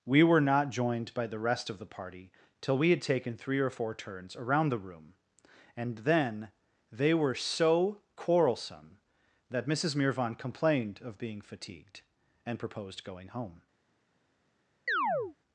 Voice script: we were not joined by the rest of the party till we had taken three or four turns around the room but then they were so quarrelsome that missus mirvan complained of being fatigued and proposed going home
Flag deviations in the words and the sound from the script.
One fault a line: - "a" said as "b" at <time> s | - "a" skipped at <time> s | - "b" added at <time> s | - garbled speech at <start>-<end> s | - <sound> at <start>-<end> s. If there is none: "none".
- "but" said as "and" at 5.8 s
- chirp at 14.9-15.4 s